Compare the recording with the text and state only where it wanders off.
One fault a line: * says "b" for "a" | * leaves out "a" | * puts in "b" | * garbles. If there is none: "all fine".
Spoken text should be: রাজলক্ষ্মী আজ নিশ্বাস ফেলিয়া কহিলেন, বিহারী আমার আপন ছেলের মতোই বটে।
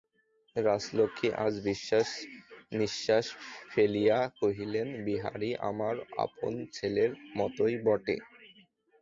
all fine